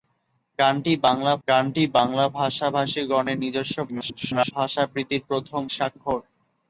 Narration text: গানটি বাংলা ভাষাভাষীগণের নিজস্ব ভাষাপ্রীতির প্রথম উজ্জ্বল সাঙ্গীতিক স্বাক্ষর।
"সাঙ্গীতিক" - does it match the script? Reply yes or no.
no